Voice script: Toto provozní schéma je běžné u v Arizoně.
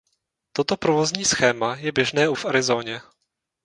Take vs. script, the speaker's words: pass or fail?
pass